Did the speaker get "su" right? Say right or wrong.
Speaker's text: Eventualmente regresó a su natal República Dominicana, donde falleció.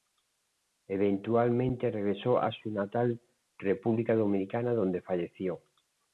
right